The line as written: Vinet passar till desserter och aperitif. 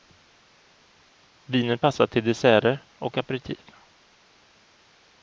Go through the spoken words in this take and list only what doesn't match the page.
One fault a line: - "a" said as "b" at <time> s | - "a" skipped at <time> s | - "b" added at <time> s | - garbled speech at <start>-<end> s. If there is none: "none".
none